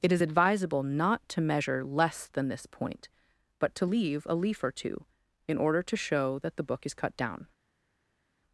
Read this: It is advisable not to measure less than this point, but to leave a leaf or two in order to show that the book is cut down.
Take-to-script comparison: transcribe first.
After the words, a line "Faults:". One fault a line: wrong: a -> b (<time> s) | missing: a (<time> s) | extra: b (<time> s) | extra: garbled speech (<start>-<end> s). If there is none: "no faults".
It is advisable not to measure less than this point, but to leave a leaf or two in order to show that the book is cut down.
Faults:
no faults